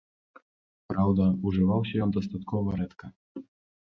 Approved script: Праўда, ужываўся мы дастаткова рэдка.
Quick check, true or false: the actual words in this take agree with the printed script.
false